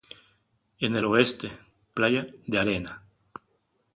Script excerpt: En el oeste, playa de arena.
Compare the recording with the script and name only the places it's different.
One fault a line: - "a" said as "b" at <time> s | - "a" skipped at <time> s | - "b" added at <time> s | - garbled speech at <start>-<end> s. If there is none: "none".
none